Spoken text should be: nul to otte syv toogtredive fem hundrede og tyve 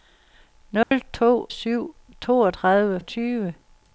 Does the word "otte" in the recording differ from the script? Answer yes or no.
yes